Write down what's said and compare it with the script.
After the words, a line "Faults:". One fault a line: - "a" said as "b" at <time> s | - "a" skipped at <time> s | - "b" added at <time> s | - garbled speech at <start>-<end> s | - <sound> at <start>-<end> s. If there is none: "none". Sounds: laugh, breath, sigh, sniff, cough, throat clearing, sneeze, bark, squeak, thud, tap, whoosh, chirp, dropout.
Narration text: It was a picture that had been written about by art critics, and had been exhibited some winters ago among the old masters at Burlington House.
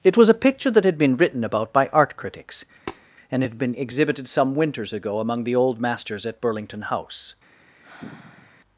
It was a picture that had been written about by art critics, and had been exhibited some winters ago among the old masters at Burlington House.
Faults:
- tap at 2.9-3.1 s
- sigh at 7.8-8.6 s